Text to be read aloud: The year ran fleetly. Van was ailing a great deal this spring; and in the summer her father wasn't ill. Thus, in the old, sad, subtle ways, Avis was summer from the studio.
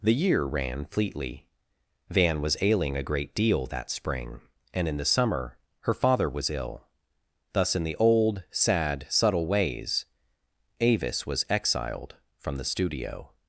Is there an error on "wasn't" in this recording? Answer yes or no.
yes